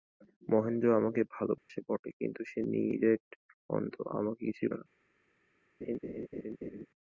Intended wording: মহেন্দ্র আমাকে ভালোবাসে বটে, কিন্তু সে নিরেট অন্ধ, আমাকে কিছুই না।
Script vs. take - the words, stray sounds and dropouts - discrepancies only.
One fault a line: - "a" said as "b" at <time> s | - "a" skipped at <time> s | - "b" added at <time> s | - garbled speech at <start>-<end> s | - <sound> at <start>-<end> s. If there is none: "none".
- dropout at 1.6-1.7 s
- laugh at 5.8-6.9 s